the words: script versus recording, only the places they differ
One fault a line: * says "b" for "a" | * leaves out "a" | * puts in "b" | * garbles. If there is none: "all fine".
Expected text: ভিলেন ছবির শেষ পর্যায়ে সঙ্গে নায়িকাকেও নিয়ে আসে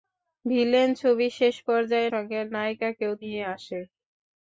all fine